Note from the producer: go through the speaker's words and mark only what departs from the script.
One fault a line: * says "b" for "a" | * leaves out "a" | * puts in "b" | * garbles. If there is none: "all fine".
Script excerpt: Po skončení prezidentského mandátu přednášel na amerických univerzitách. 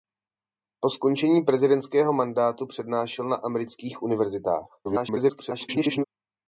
* garbles